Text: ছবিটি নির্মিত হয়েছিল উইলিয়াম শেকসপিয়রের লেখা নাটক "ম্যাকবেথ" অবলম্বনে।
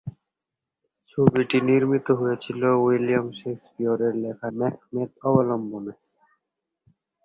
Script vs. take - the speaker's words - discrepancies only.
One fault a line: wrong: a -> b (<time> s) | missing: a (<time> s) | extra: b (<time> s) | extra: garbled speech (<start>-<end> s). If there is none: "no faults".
missing: নাটক (4.5 s)